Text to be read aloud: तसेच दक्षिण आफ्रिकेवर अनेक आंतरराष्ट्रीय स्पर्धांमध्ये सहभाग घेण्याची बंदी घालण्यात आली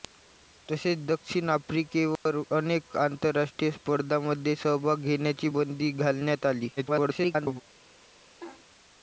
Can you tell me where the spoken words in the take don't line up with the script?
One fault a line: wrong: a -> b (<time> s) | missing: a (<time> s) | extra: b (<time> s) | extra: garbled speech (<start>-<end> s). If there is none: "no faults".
extra: garbled speech (6.8-7.6 s)